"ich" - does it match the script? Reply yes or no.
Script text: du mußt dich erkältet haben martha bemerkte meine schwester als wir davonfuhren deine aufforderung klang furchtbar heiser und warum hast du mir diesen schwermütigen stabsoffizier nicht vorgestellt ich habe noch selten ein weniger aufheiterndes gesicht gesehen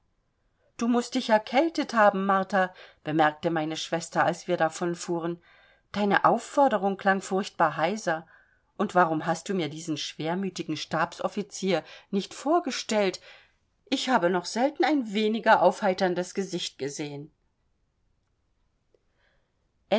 yes